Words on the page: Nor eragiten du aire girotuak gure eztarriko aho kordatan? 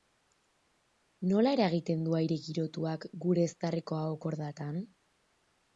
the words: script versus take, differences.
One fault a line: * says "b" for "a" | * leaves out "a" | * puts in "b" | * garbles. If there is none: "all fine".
* says "Nola" for "Nor"